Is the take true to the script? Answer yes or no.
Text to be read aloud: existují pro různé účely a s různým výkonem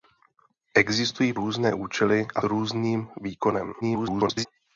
no